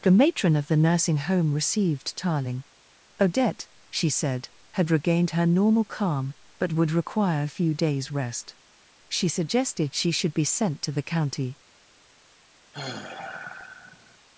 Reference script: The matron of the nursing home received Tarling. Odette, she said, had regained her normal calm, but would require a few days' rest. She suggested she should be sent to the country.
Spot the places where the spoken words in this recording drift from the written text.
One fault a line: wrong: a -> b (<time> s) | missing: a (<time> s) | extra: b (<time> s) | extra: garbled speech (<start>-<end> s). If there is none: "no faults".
wrong: country -> county (11.0 s)